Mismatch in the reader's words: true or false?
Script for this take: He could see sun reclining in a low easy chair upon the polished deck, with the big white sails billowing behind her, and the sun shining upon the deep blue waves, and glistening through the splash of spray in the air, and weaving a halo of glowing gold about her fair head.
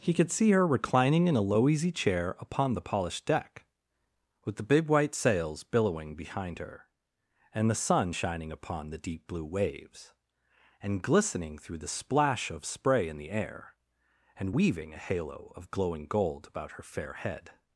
true